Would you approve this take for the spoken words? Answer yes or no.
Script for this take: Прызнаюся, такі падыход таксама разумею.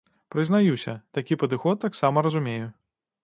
yes